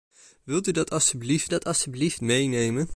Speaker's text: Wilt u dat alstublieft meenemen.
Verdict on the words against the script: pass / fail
fail